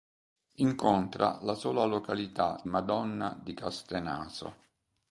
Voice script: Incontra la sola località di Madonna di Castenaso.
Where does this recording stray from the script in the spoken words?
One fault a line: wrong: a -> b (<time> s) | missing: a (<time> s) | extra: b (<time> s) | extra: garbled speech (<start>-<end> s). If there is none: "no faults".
missing: di (2.6 s)